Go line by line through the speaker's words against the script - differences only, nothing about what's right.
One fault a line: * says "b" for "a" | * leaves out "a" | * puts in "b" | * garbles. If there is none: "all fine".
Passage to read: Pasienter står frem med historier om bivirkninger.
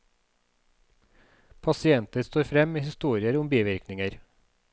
all fine